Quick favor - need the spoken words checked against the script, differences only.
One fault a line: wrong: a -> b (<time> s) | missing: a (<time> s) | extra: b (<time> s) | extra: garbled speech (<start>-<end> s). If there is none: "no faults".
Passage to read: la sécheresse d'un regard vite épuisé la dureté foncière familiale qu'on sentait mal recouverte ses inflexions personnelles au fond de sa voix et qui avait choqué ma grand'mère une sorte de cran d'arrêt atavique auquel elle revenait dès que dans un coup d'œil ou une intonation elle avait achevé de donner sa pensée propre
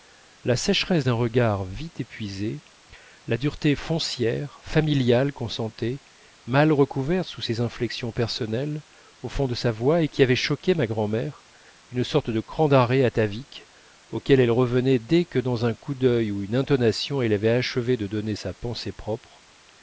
extra: sous (7.3 s)